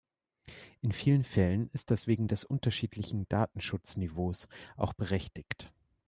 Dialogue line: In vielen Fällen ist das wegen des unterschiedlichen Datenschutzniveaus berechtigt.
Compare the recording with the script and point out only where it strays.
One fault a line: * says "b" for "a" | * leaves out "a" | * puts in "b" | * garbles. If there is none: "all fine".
* puts in "auch"